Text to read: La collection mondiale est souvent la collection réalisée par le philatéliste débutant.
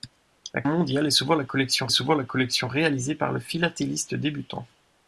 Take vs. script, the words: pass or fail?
fail